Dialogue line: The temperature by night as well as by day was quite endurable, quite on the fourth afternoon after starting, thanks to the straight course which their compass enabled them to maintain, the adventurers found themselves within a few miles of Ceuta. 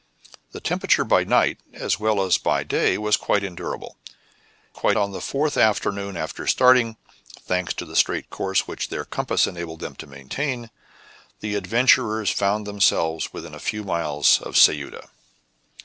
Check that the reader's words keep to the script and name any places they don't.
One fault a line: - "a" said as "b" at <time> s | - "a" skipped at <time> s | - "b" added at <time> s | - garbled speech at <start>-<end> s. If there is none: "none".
none